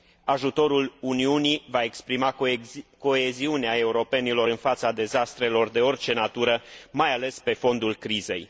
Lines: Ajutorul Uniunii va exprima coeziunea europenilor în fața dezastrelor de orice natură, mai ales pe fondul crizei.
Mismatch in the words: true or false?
false